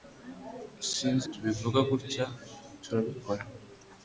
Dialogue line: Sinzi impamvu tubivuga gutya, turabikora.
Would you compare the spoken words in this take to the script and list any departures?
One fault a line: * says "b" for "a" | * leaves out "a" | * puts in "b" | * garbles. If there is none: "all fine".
* leaves out "impamvu"